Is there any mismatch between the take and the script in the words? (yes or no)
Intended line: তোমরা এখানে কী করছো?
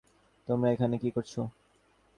no